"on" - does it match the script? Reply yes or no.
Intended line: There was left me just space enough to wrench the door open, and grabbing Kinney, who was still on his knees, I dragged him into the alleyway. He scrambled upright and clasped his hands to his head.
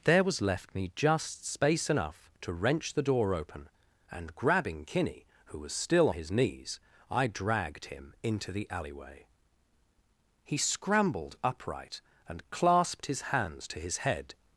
no